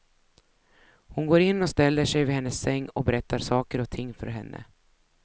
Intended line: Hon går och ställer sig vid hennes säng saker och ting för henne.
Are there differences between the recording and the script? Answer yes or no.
yes